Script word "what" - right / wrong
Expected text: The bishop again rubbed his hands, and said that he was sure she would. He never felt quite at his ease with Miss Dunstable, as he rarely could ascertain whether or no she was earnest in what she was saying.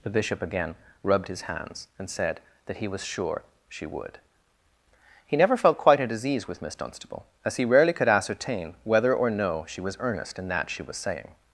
wrong